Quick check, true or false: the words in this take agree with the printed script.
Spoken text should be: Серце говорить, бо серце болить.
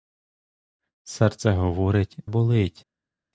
false